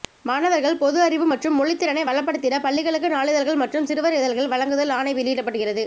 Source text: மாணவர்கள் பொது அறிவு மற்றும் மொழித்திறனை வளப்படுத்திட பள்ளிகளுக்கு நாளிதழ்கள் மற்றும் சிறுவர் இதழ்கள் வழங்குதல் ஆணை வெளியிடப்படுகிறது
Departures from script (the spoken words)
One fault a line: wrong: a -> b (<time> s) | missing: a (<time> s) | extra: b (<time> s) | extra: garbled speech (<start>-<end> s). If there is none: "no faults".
no faults